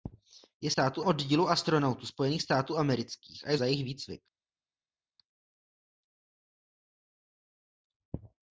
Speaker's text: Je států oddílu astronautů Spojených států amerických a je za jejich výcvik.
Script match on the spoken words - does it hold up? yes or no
yes